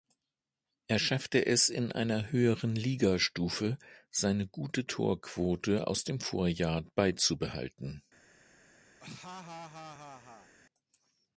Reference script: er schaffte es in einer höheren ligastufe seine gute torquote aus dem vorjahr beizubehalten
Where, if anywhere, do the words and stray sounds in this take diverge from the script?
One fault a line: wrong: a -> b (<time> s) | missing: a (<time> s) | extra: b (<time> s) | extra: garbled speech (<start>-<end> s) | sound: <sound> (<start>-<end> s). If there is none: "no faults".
sound: laugh (9.0-10.5 s)